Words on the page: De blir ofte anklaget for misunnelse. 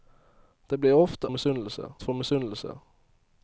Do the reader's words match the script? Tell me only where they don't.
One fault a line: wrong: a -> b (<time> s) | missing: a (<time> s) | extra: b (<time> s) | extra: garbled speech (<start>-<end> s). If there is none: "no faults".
wrong: anklaget -> misunnelse (1.3 s)